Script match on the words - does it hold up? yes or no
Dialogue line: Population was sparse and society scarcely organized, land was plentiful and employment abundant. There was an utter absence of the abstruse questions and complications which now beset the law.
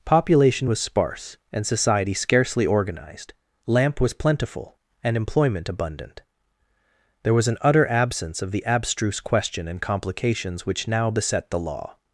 no